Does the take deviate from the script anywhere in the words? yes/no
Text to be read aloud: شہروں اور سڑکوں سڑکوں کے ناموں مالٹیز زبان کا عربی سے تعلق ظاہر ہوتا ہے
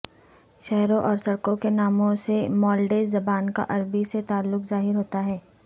yes